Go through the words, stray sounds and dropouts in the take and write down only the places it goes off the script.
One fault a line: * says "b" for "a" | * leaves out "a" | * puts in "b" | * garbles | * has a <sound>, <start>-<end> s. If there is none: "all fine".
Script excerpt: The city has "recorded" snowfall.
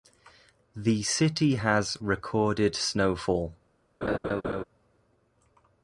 * has a laugh, 4.0-4.6 s